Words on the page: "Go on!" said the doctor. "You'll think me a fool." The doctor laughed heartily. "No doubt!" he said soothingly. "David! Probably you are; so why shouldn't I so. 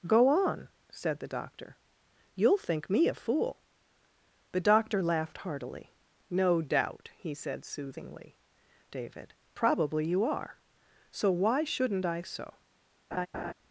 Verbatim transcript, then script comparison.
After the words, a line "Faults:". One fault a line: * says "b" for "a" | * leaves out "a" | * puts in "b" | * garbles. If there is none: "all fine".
"Go on!" said the doctor. "You'll think me a fool." The doctor laughed heartily. "No doubt!" he said soothingly. "David! Probably you are; so why shouldn't I so.
Faults:
all fine